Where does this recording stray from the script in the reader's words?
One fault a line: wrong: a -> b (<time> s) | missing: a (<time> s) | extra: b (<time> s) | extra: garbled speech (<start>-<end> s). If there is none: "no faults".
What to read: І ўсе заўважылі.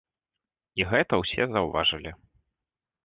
extra: гэта (0.9 s)